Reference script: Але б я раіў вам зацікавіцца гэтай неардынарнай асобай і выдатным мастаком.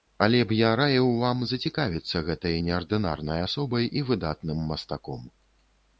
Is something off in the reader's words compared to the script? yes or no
no